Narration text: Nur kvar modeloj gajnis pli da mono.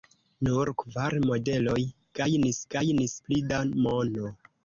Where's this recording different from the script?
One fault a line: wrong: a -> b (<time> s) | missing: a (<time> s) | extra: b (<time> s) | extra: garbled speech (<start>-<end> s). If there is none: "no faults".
extra: gajnis (2.8 s)